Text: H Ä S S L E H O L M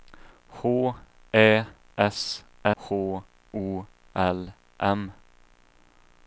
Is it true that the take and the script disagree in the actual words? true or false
true